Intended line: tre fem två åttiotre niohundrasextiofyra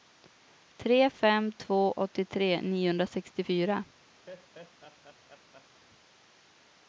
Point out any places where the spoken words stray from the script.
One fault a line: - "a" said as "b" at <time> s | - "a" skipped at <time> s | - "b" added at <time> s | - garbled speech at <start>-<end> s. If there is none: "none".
none